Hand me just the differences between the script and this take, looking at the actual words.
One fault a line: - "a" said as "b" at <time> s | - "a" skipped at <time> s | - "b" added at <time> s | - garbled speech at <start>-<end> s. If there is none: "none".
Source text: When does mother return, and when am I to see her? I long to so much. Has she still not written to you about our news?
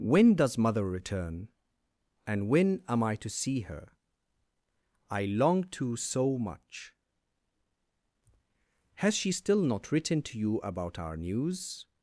none